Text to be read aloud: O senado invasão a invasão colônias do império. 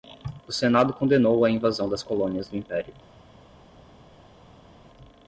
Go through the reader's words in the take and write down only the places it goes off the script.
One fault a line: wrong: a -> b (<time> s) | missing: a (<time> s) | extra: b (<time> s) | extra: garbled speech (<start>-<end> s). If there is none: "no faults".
wrong: invasão -> condenou (0.9 s)
extra: das (1.9 s)